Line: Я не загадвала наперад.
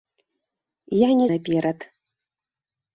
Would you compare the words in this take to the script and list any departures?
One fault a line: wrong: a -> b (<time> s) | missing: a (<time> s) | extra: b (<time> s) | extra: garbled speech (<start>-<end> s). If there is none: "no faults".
missing: загадвала (1.3 s)